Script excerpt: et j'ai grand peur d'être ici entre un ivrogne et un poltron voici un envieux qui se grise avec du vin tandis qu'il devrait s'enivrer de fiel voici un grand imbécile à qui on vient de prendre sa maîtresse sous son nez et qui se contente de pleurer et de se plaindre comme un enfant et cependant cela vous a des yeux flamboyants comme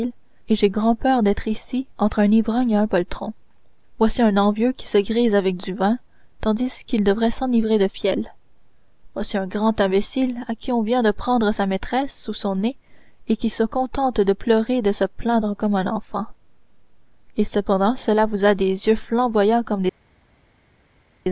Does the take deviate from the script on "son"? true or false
false